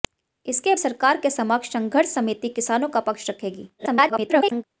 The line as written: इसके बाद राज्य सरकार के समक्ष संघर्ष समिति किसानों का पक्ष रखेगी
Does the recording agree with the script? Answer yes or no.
no